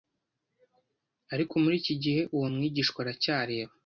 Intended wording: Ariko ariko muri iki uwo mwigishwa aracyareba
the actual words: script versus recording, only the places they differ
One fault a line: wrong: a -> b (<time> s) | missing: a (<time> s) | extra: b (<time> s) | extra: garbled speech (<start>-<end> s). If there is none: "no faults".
missing: ariko (1.5 s)
extra: gihe (2.0 s)